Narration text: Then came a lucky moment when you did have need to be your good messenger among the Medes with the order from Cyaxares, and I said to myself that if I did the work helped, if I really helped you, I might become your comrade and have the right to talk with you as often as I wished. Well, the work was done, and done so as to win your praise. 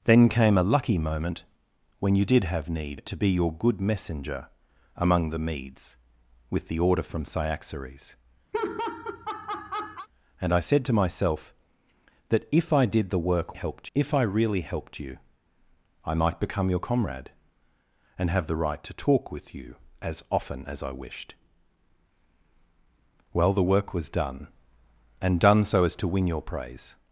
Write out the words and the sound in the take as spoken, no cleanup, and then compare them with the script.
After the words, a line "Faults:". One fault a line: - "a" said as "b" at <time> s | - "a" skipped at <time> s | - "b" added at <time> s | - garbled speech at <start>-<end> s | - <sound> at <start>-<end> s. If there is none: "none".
Then came a lucky moment when you did have need to be your good messenger among the Medes with the order from Cyaxares, and I said to myself that if I did the work helped, if I really helped you, I might become your comrade and have the right to talk with you as often as I wished. Well, the work was done, and done so as to win your praise.
Faults:
- laugh at 8.5-10.1 s